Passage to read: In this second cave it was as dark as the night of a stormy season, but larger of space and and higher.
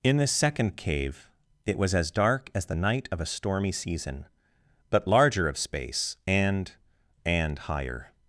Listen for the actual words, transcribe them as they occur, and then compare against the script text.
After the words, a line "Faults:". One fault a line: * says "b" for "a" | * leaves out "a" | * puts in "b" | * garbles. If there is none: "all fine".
In this second cave it was as dark as the night of a stormy season, but larger of space and and higher.
Faults:
all fine